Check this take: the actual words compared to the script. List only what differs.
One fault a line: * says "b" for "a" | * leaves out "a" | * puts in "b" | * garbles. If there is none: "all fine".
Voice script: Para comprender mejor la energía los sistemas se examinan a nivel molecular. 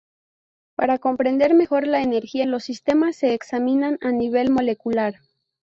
all fine